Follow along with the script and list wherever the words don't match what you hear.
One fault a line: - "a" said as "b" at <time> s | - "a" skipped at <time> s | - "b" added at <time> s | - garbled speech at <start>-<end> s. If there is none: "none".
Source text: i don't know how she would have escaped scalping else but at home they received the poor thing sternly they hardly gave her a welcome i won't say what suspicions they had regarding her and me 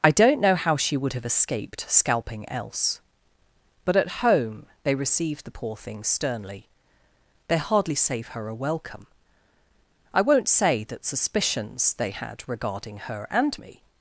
- "gave" said as "save" at 7.9 s
- "what" said as "that" at 10.9 s